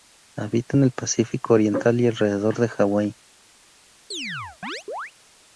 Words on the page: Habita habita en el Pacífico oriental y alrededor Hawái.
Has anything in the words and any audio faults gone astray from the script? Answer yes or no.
yes